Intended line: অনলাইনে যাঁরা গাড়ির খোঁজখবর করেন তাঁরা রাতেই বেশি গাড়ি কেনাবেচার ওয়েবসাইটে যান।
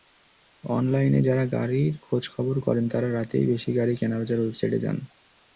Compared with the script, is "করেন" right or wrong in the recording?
right